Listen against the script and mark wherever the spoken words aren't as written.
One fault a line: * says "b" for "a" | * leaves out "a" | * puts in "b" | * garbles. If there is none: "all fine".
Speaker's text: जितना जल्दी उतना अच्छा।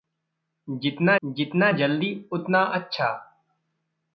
* puts in "जितना"